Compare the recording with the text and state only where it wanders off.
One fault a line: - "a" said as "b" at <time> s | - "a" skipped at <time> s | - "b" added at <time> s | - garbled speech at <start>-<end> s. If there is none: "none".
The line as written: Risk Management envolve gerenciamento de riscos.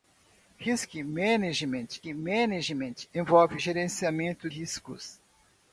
- "Management" added at 2.1 s
- "de" skipped at 4.5 s